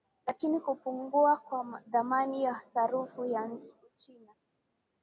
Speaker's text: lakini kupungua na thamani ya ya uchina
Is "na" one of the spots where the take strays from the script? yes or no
yes